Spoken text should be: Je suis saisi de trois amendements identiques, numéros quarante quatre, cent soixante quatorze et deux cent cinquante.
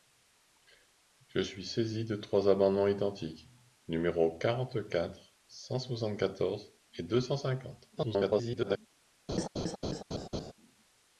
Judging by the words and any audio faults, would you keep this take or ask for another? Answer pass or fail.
fail